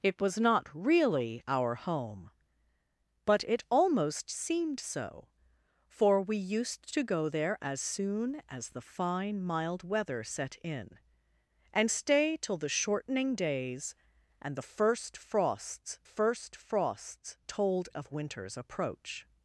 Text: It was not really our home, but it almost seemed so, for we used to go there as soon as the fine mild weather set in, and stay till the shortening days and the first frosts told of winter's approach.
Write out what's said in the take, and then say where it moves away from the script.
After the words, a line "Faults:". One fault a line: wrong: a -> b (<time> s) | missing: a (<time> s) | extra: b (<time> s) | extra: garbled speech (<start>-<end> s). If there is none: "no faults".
It was not really our home, but it almost seemed so, for we used to go there as soon as the fine mild weather set in, and stay till the shortening days and the first frosts first frosts told of winter's approach.
Faults:
extra: first frosts (16.0 s)